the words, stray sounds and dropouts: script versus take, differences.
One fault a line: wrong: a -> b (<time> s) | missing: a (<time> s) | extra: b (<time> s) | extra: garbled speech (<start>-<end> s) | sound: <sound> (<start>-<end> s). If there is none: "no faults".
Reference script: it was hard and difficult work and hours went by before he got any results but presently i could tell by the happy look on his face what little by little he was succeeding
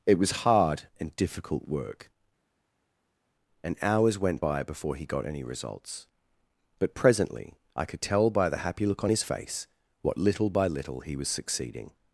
no faults